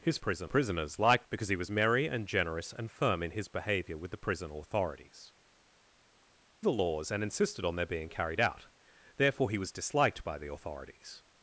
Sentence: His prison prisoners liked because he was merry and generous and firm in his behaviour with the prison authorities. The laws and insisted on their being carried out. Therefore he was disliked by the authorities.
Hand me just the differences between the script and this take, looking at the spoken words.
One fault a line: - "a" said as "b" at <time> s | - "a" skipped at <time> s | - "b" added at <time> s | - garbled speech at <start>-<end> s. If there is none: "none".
none